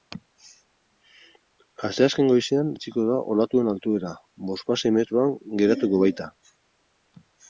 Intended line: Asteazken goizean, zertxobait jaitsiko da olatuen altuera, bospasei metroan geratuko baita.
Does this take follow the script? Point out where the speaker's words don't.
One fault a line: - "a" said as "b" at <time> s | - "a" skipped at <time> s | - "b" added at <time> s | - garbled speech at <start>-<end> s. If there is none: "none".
- "zertxobait" skipped at 2.7 s